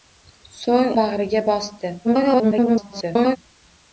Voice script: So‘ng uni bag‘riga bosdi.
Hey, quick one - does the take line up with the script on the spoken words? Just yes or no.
no